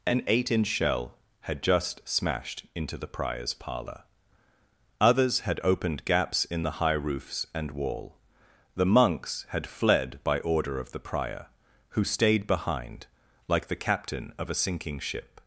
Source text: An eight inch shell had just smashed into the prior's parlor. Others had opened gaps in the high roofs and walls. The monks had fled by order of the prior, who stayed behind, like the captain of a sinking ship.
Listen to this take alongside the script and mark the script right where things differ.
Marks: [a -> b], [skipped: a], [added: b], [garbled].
An eight inch shell had just smashed into the prior's parlor. Others had opened gaps in the high roofs and [walls. -> wall] The monks had fled by order of the prior, who stayed behind, like the captain of a sinking ship.